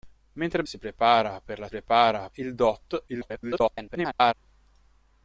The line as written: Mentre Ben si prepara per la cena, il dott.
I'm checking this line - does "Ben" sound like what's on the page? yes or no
no